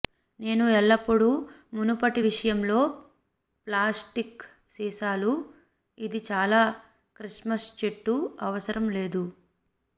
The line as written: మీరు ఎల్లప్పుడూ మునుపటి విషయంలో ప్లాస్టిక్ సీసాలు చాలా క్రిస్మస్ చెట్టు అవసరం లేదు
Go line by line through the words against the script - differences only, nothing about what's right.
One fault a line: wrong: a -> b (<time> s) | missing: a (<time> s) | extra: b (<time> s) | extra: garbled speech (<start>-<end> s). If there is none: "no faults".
wrong: మీరు -> నేను (0.4 s)
extra: ఇది (6.0 s)